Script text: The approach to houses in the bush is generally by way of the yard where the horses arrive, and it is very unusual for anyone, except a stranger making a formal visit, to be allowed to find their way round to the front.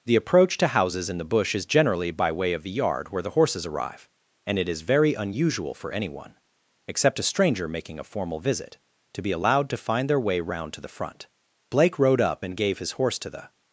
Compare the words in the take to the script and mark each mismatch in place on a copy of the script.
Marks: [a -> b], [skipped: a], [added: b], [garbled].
The approach to houses in the bush is generally by way of the yard where the horses arrive, and it is very unusual for anyone, except a stranger making a formal visit, to be allowed to find their way round to the front. [added: Blake rode up and gave his horse to the]